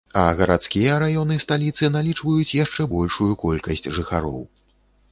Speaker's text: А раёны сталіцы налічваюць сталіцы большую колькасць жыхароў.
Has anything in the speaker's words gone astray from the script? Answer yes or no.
yes